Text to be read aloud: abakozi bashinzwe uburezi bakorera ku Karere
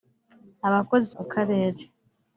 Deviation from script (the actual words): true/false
true